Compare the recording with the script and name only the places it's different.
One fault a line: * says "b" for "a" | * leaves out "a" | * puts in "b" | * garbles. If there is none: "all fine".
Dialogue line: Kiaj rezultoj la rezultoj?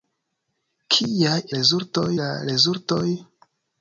all fine